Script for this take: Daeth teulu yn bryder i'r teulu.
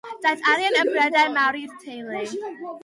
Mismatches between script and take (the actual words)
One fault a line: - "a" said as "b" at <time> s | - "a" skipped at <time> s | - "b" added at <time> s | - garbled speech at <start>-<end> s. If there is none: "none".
- "teulu" said as "arian" at 0.5 s
- "mawr" added at 1.4 s